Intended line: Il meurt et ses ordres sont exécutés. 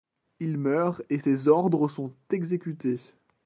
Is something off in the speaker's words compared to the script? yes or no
no